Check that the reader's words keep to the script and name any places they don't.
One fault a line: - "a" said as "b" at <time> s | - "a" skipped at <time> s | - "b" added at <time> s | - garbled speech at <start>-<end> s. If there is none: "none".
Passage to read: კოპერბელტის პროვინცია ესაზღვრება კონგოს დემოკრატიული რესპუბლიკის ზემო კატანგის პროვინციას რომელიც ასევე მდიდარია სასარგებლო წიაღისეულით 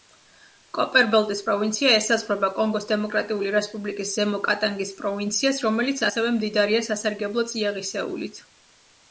none